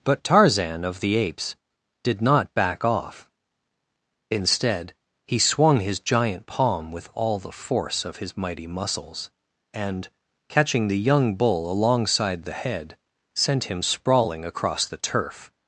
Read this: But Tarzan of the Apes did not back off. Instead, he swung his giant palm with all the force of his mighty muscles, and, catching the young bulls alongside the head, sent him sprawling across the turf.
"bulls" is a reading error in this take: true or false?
true